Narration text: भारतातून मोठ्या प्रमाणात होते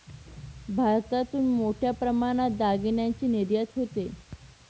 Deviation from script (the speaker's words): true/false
true